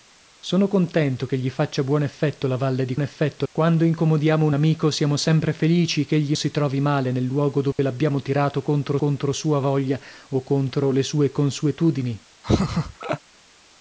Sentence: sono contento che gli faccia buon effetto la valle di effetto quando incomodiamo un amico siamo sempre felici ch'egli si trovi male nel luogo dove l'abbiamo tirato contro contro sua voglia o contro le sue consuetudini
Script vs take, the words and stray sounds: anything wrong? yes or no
yes